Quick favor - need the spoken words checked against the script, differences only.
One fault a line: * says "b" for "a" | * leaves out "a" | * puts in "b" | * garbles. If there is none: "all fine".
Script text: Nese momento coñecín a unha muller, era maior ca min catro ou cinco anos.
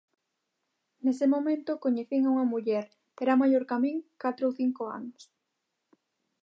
all fine